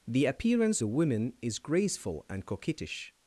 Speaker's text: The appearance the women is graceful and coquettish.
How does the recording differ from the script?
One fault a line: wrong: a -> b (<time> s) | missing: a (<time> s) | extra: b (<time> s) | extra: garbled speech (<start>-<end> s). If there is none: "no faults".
no faults